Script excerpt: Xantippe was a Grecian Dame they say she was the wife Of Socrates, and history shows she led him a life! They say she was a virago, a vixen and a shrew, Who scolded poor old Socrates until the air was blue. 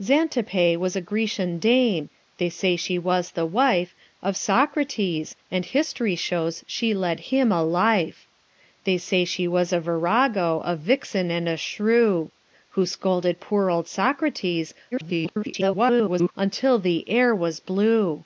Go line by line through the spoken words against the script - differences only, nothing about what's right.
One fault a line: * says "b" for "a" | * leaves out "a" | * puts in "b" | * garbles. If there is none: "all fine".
* garbles